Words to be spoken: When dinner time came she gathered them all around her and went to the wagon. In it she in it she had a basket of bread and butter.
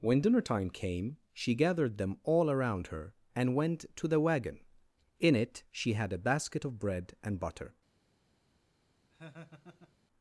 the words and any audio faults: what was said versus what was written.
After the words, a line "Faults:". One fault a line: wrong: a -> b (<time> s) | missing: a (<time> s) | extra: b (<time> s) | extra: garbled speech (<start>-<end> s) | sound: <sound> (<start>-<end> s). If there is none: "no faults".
When dinner time came she gathered them all around her and went to the wagon. In it she had a basket of bread and butter.
Faults:
missing: in it she (5.9 s)
sound: laugh (9.1-10.0 s)